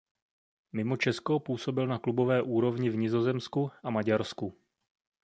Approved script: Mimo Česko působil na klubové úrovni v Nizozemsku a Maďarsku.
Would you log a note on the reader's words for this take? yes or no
no